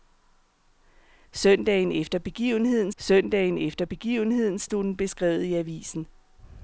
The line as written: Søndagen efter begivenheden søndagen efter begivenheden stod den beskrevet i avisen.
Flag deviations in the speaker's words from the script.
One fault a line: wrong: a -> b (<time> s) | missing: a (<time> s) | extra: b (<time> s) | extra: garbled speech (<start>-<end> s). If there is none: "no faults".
no faults